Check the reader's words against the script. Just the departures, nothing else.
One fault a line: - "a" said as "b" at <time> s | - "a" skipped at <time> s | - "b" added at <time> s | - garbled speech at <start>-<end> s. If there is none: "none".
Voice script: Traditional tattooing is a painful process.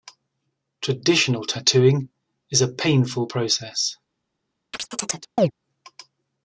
none